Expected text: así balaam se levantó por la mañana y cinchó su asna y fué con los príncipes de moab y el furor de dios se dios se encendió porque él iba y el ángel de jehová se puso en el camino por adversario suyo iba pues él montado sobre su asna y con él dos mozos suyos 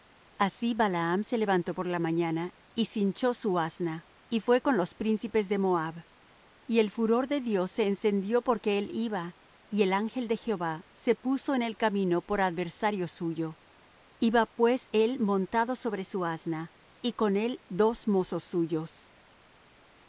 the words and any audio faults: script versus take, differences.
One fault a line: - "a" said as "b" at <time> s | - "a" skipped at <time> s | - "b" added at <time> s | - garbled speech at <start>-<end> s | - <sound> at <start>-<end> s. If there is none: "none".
- "dios se" skipped at 7.9 s